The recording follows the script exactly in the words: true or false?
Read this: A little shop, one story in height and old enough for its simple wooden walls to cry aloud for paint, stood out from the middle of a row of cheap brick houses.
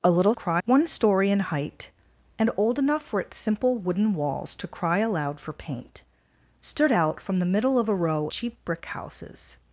false